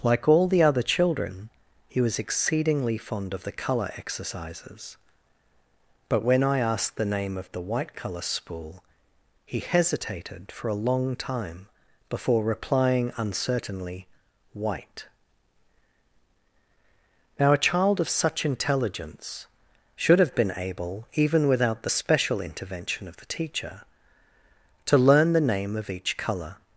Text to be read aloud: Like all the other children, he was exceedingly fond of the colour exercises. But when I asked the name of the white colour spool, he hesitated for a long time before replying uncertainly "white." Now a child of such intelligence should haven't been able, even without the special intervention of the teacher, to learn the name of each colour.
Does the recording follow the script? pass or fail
fail